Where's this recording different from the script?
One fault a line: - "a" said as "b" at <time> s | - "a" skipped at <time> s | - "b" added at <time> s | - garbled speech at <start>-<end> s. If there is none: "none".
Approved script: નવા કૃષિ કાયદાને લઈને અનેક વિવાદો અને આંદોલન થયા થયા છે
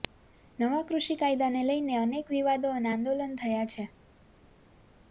- "થયા" skipped at 3.7 s